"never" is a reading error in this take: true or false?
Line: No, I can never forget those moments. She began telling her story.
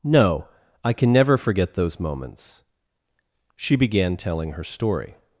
false